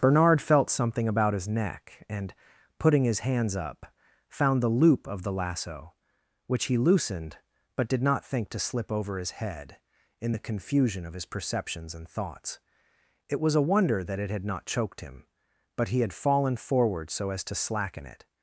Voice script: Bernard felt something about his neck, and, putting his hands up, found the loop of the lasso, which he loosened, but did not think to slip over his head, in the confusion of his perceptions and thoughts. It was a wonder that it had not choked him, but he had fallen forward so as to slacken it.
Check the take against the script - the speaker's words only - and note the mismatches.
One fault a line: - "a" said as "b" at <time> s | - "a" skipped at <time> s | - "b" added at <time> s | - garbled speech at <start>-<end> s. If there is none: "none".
none